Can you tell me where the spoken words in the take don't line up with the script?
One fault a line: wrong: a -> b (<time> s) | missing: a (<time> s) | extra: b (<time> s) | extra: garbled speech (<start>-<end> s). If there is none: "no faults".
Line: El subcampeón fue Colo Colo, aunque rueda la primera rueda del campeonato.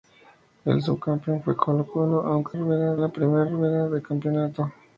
no faults